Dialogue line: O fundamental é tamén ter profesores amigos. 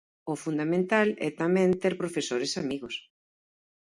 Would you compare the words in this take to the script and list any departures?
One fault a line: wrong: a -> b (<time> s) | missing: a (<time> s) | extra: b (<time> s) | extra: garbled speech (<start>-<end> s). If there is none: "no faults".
no faults